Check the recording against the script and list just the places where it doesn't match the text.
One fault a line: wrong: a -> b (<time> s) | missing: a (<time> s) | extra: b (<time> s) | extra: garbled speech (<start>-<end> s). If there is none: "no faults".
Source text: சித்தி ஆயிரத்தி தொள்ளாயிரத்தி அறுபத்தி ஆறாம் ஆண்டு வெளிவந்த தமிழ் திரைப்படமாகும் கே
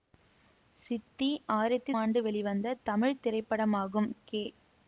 missing: தொள்ளாயிரத்தி அறுபத்தி ஆறாம் (1.9 s)